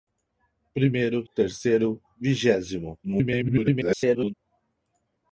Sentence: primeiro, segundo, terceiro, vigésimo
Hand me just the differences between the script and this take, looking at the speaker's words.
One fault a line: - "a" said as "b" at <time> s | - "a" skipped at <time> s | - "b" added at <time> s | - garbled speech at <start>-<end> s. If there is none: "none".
- "segundo" skipped at 1.3 s
- garbled speech at 3.0-4.3 s